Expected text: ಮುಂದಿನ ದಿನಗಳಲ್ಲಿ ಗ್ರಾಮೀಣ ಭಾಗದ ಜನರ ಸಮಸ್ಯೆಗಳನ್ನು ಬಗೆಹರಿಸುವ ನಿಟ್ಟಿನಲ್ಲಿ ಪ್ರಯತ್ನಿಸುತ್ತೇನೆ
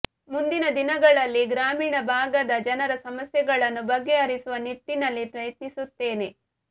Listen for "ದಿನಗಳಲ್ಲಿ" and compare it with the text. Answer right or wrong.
right